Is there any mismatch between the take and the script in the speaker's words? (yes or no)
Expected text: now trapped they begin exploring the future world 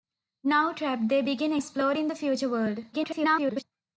yes